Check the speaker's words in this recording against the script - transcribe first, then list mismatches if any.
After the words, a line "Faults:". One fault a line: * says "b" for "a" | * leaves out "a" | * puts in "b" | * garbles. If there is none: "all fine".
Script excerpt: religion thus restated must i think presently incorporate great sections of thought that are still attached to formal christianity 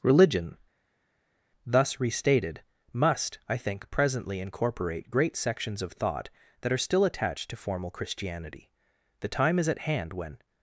religion thus restated must i think presently incorporate great sections of thought that are still attached to formal christianity the time is at hand when
Faults:
* puts in "the time is at hand when"